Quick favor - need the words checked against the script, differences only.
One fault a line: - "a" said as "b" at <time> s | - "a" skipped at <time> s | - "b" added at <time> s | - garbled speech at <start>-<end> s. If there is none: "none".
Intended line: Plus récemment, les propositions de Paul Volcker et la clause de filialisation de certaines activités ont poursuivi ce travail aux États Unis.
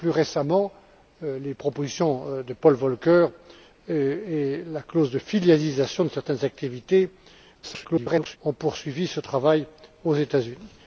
- garbled speech at 7.6-8.4 s